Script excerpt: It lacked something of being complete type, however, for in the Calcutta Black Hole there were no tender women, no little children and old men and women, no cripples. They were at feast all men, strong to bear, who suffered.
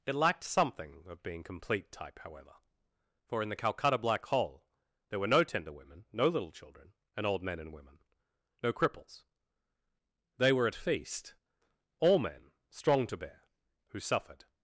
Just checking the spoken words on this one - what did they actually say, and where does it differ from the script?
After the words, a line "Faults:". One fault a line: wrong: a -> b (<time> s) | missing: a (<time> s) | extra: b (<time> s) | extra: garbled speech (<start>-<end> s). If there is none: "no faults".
It lacked something of being complete type, however, for in the Calcutta Black Hole there were no tender women, no little children and old men and women, no cripples. They were at feast all men, strong to bear, who suffered.
Faults:
no faults